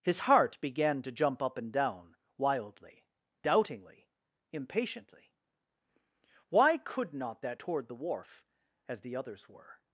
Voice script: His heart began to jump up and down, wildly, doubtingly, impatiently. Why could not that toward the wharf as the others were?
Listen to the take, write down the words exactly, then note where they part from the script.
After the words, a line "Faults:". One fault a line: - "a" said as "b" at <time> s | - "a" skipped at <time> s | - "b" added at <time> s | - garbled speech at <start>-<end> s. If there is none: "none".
His heart began to jump up and down, wildly, doubtingly, impatiently. Why could not that toward the wharf as the others were?
Faults:
none